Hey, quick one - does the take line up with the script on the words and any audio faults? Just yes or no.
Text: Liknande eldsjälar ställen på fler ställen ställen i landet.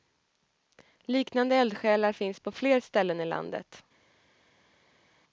no